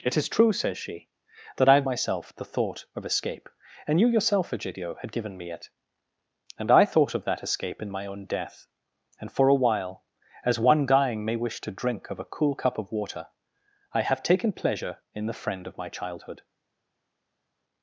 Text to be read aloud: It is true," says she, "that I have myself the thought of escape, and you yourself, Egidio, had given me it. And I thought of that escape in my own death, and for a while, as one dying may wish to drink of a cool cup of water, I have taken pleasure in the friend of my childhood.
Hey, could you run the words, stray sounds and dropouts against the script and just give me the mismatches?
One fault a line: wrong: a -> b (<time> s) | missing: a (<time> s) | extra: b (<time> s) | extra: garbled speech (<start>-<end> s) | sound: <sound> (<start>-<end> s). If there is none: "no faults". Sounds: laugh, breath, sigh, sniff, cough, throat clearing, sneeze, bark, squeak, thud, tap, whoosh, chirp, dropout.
no faults